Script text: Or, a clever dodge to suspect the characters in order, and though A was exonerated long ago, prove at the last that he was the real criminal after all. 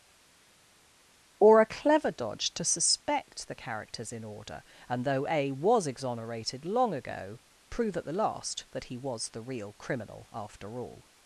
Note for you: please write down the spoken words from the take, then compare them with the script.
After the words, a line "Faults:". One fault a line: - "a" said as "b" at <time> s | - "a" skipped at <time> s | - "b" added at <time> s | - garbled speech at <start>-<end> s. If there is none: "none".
Or, a clever dodge to suspect the characters in order, and though A was exonerated long ago, prove at the last that he was the real criminal after all.
Faults:
none